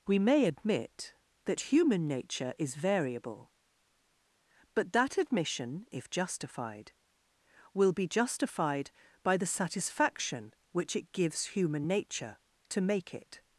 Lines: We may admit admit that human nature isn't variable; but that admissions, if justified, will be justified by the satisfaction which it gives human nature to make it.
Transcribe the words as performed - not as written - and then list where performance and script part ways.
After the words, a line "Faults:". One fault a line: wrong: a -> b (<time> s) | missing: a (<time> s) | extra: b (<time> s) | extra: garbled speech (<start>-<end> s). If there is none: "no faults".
We may admit that human nature is variable; but that admission, if justified, will be justified by the satisfaction which it gives human nature to make it.
Faults:
missing: admit (1.1 s)
wrong: isn't -> is (2.6 s)
wrong: admissions -> admission (5.2 s)